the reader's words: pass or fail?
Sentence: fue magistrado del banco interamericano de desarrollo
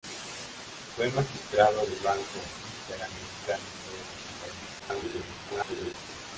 fail